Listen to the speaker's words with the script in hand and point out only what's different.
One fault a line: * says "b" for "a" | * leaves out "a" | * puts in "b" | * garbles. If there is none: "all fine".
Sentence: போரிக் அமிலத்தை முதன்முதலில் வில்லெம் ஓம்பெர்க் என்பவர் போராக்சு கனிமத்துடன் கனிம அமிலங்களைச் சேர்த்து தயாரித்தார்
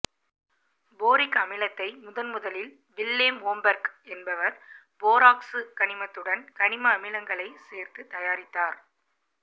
all fine